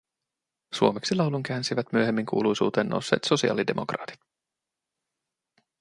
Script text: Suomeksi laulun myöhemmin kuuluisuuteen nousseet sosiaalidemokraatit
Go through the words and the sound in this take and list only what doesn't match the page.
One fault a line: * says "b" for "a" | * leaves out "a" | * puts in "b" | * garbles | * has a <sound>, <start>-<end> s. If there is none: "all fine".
* puts in "käänsivät"